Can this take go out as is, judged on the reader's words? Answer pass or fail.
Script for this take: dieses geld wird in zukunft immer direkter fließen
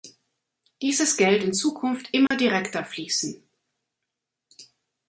fail